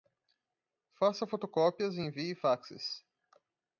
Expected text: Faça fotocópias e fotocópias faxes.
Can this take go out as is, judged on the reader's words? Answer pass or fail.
fail